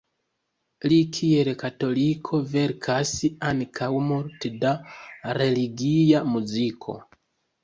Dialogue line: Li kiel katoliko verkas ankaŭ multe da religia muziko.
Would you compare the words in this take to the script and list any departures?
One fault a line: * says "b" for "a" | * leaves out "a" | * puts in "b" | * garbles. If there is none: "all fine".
all fine